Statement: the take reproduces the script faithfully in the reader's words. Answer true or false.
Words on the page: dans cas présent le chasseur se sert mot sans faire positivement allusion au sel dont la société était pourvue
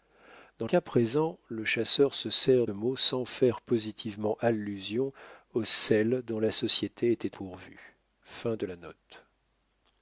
true